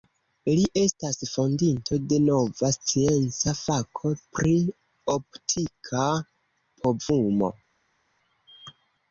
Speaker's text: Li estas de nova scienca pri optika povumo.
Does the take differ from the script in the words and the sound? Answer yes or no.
yes